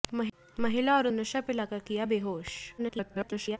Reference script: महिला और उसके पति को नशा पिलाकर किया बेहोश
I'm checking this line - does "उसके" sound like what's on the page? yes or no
no